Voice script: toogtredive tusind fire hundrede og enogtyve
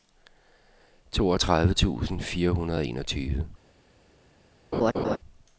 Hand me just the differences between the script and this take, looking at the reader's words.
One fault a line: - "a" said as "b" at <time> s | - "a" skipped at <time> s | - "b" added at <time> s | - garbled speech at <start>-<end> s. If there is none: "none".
none